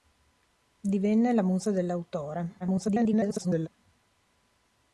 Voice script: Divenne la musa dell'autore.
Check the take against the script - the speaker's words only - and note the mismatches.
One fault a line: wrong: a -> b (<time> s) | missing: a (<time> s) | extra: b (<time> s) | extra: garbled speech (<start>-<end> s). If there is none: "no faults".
extra: garbled speech (2.6-3.7 s)